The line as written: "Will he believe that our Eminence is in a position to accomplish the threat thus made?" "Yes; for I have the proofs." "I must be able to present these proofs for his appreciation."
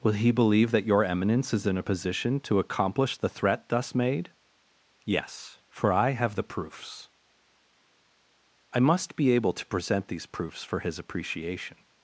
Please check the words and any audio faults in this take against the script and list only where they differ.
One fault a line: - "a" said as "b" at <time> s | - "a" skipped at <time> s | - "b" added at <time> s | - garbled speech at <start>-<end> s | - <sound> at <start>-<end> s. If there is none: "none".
- "our" said as "your" at 0.9 s